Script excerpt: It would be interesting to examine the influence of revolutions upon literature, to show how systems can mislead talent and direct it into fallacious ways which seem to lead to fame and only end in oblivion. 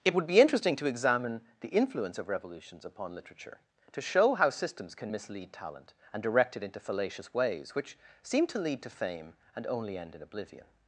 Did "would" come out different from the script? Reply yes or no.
no